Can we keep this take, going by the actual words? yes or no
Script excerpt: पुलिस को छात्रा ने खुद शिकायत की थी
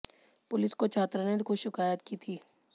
yes